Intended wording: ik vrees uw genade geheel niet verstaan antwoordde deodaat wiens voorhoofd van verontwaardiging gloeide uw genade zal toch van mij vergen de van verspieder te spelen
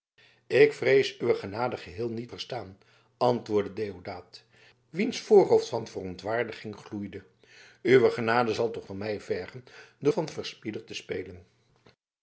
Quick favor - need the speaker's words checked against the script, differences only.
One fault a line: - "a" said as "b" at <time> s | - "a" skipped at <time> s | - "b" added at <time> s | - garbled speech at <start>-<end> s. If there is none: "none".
none